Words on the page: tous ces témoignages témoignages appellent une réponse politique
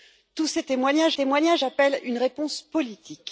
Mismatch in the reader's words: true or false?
false